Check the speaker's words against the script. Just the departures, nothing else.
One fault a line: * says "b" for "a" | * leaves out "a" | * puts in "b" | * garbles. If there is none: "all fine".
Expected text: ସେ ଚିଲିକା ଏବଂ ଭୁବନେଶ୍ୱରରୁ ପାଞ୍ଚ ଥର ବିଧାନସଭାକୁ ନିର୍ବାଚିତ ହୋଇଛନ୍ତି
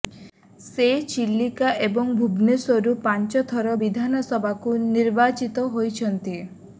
all fine